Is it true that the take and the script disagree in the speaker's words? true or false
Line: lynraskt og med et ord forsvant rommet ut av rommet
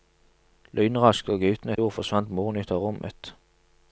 true